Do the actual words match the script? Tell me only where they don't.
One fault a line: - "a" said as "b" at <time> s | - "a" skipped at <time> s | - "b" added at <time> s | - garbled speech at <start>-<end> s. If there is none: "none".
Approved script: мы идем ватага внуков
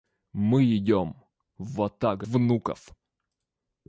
none